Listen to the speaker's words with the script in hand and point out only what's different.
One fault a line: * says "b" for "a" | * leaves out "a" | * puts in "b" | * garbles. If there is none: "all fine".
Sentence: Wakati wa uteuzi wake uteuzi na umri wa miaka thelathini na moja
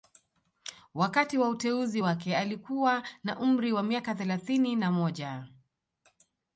* says "alikuwa" for "uteuzi"